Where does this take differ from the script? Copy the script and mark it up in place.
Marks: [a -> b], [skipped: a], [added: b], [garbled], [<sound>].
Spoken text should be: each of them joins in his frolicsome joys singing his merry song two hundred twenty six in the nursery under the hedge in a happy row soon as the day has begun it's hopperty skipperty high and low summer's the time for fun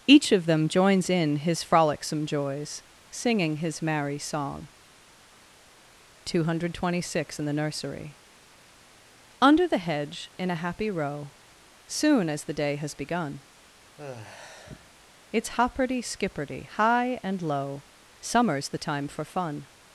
each of them joins in his frolicsome joys singing his merry song two hundred twenty six in the nursery under the hedge in a happy row soon as the day has begun [sigh] it's hopperty skipperty high and low summer's the time for fun